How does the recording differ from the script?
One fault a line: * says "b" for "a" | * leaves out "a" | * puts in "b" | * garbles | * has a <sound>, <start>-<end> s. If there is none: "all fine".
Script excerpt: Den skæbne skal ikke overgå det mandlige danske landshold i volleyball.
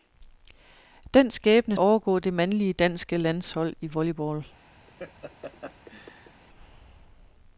* leaves out "skal ikke"
* has a laugh, 4.9-6.4 s